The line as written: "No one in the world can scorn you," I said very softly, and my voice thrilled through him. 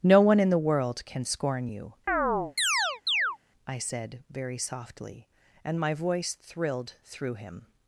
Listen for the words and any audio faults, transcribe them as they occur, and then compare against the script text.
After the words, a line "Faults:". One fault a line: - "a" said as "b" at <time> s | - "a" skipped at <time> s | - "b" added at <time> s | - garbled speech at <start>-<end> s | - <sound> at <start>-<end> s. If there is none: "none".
"No one in the world can scorn you," I said very softly, and my voice thrilled through him.
Faults:
- chirp at 2.1-3.4 s